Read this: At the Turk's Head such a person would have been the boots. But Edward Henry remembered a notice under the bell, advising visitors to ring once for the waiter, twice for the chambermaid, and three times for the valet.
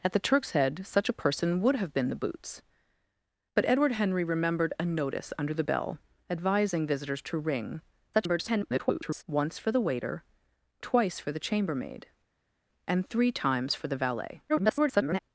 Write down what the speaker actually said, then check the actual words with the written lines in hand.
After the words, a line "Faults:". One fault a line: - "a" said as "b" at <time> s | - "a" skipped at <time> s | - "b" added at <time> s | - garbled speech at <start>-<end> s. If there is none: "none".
At the Turk's Head such a person would have been the boots. But Edward Henry remembered a notice under the bell, advising visitors to ring [garbled] once for the waiter, twice for the chambermaid, and three times for the valet. [garbled]
Faults:
- garbled speech at 8.1-9.2 s
- garbled speech at 14.5-15.2 s